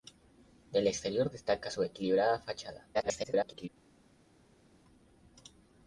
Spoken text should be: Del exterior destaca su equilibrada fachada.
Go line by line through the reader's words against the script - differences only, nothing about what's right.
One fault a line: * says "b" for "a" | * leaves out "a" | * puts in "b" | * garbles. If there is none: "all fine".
* garbles